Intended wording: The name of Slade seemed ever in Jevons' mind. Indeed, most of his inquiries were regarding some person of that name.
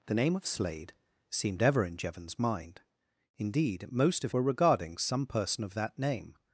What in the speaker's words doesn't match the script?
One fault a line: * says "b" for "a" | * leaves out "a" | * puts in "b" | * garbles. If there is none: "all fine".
* leaves out "his inquiries"